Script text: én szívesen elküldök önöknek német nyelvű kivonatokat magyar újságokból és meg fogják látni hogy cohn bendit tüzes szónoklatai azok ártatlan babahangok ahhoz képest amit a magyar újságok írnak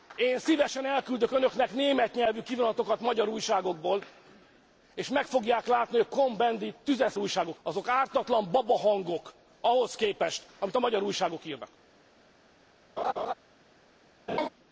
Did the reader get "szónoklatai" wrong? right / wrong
wrong